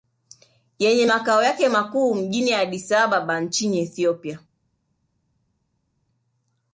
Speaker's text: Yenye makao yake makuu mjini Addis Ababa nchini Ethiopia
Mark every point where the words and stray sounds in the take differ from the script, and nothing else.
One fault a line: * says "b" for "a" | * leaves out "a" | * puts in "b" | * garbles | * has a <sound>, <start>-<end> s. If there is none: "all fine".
all fine